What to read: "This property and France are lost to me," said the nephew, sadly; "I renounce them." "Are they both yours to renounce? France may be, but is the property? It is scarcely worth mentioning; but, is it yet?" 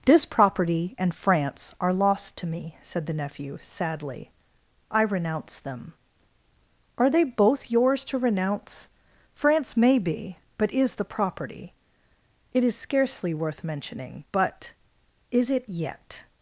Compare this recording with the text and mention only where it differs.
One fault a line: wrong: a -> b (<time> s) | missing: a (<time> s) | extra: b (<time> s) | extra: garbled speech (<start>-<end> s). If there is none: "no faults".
no faults